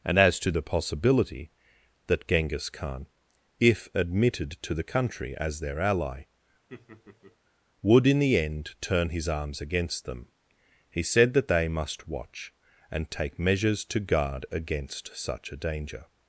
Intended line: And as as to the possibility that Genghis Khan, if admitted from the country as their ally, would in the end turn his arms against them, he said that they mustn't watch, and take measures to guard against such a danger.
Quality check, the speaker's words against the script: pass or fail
fail